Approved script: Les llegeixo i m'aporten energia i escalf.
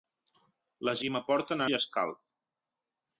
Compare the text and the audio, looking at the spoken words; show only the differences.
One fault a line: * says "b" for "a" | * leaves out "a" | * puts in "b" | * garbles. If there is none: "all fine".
* leaves out "llegeixo"
* leaves out "energia"